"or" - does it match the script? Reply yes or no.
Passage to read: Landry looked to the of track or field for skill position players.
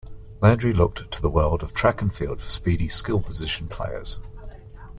no